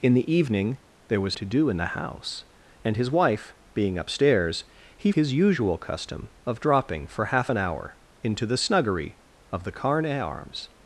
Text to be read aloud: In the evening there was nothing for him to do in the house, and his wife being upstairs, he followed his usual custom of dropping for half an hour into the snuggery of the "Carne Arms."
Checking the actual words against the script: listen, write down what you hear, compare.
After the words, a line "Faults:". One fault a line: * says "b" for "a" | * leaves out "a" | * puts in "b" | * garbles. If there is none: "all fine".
In the evening there was to do in the house, and his wife being upstairs, he his usual custom of dropping for half an hour into the snuggery of the "Carne Arms."
Faults:
* leaves out "nothing for him"
* leaves out "followed"